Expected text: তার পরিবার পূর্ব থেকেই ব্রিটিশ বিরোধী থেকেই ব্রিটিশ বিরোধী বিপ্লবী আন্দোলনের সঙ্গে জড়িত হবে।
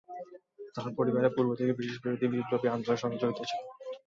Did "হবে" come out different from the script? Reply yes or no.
yes